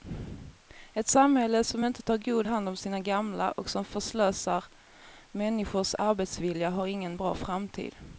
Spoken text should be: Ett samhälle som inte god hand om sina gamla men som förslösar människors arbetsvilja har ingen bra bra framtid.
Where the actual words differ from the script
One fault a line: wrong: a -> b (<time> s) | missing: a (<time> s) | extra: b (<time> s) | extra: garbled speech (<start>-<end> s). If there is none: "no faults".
extra: tar (2.0 s)
wrong: men -> och (3.5 s)
missing: bra (7.3 s)